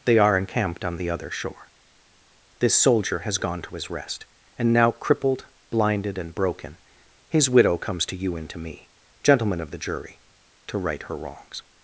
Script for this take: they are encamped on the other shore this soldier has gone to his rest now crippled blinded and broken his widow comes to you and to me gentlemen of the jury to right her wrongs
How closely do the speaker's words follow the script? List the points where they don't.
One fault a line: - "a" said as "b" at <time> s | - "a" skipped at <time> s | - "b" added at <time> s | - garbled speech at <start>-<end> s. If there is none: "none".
- "and" added at 4.6 s